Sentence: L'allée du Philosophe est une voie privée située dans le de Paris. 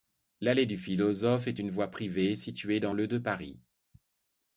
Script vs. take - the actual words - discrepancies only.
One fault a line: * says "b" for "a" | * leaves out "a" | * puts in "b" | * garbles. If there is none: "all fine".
all fine